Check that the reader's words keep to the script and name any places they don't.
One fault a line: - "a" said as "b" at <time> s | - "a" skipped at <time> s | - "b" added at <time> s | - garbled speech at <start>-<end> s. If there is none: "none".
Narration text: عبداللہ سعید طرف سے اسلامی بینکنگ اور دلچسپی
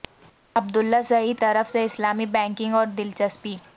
none